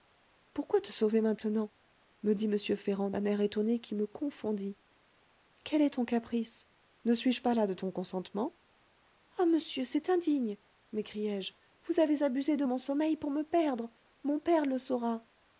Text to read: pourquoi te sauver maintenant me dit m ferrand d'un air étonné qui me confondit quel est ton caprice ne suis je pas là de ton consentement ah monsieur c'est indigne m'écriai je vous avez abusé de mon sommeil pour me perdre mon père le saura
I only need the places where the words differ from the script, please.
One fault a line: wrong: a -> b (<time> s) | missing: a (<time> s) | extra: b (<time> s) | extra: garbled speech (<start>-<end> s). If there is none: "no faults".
no faults